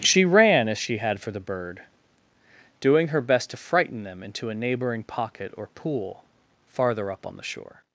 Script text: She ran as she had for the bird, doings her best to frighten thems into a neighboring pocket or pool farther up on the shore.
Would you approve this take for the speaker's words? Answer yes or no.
no